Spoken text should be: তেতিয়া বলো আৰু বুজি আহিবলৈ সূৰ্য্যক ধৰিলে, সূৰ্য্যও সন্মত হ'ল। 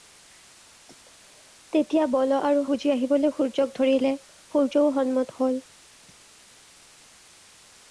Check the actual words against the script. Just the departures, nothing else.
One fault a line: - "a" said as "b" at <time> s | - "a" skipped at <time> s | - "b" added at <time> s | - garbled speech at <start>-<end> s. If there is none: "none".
none